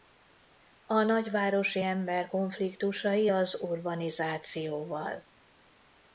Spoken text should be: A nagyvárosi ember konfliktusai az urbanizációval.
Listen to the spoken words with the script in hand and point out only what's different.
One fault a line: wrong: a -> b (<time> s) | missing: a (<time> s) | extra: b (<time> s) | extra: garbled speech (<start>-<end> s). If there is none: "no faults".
no faults